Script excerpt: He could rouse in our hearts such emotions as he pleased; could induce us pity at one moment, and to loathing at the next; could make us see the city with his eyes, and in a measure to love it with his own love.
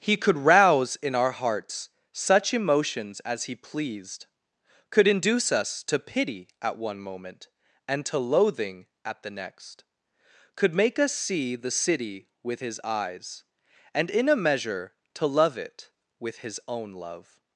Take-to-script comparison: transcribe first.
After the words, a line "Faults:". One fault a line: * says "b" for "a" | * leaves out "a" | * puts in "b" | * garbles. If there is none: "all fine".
He could rouse in our hearts such emotions as he pleased; could induce us to pity at one moment, and to loathing at the next; could make us see the city with his eyes, and in a measure to love it with his own love.
Faults:
* puts in "to"